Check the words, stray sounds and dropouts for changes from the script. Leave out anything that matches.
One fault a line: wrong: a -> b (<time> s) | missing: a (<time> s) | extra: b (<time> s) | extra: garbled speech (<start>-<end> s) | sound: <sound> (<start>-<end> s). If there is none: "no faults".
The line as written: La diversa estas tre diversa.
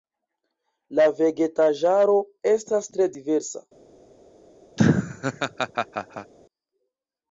wrong: diversa -> vegetaĵaro (1.2 s)
sound: laugh (4.8-6.3 s)